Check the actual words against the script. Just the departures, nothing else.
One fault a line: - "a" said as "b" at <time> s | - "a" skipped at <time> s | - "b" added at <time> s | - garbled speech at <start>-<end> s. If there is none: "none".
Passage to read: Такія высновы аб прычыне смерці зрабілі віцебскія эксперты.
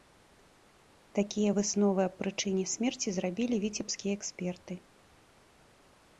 none